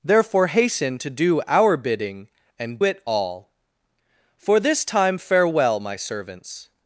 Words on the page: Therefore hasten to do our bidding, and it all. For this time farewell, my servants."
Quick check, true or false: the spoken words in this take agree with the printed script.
true